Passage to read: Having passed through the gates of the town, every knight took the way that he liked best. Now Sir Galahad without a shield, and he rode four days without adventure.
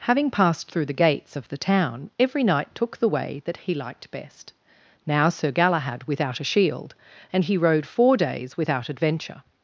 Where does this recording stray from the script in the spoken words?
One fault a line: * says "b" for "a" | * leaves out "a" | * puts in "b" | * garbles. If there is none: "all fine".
all fine